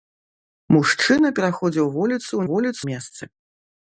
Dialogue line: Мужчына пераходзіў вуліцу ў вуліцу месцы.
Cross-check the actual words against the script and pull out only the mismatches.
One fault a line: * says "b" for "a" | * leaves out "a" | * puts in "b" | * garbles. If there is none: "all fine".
all fine